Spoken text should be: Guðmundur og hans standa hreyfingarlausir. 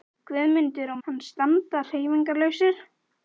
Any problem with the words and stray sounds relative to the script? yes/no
no